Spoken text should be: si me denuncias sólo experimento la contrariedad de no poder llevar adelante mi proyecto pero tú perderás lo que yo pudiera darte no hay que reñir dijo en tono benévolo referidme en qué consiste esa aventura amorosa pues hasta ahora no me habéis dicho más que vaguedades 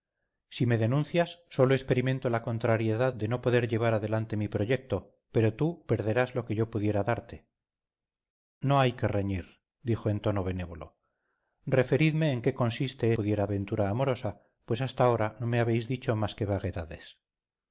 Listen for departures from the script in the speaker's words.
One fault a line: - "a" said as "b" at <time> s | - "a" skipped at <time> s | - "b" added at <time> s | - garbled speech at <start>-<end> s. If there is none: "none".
- "esa" said as "pudiera" at 13.1 s